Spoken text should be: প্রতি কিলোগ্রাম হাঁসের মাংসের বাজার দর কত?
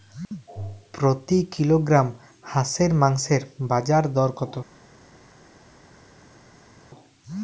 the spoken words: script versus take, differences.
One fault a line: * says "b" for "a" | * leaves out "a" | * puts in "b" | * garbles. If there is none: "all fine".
all fine